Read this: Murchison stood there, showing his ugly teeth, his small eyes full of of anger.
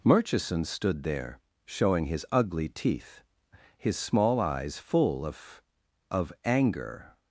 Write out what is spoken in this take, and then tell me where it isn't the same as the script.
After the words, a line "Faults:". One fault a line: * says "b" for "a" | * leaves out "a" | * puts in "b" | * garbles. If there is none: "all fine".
Murchison stood there, showing his ugly teeth, his small eyes full of of anger.
Faults:
all fine